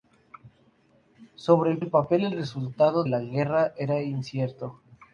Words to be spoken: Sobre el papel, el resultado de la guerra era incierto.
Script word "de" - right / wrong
wrong